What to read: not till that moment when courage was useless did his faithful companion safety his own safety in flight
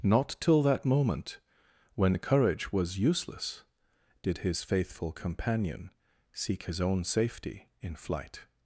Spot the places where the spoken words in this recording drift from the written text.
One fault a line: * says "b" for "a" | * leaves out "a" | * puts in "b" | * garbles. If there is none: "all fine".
* says "seek" for "safety"